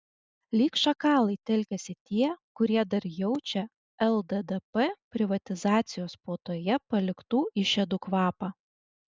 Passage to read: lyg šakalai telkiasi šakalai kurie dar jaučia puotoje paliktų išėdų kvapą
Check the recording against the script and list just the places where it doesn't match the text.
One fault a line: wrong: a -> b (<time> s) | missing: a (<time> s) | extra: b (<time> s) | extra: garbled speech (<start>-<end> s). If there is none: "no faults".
wrong: šakalai -> tie (2.1 s)
extra: lddp privatizacijos (4.1 s)